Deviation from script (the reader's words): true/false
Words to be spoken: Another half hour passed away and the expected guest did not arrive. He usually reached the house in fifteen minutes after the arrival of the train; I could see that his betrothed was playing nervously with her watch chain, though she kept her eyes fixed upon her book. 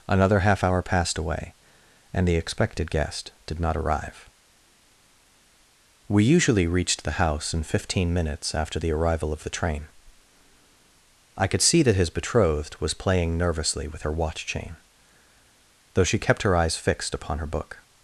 true